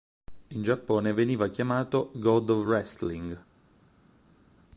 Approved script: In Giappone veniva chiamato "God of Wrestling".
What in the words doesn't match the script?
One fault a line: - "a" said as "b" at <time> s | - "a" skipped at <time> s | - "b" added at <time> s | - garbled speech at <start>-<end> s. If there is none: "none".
none